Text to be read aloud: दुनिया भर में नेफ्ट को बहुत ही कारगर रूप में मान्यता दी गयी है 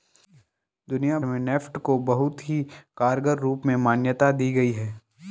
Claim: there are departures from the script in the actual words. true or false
true